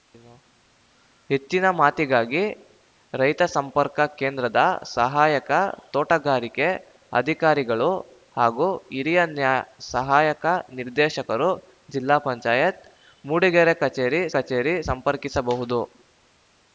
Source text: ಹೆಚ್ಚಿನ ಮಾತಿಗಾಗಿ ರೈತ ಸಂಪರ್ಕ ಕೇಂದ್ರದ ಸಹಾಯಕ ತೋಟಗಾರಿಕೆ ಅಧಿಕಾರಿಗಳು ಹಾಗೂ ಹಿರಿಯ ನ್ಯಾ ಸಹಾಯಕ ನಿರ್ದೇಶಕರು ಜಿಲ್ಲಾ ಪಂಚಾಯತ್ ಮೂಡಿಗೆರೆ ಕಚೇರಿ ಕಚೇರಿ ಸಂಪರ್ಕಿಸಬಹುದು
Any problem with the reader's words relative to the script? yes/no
no